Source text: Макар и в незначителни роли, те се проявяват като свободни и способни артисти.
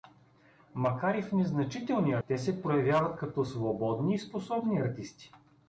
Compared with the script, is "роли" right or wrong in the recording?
wrong